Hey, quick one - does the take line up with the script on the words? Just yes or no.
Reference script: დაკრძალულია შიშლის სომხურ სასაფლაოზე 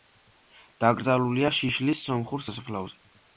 yes